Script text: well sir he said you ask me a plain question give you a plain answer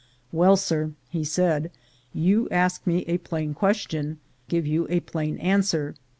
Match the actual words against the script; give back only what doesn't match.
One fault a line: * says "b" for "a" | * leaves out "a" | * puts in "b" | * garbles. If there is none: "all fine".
all fine